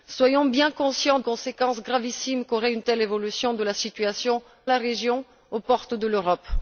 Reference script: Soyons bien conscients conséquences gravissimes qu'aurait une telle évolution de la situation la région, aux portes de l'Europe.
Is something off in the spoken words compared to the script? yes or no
no